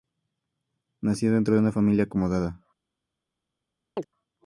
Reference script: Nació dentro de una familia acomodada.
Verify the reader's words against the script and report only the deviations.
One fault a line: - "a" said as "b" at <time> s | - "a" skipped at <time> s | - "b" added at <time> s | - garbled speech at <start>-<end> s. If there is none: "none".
none